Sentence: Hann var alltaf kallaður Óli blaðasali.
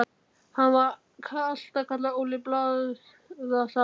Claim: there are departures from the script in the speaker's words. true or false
false